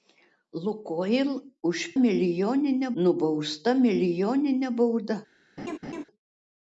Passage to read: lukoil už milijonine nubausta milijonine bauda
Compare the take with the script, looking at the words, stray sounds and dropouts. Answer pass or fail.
fail